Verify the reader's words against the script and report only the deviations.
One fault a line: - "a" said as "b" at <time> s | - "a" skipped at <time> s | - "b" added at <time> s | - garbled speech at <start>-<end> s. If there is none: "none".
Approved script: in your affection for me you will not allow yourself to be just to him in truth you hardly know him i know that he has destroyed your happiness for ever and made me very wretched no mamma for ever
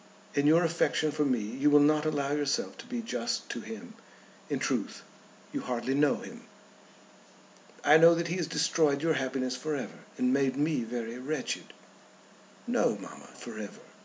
none